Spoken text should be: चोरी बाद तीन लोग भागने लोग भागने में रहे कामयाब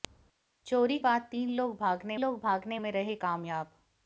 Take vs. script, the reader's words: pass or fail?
pass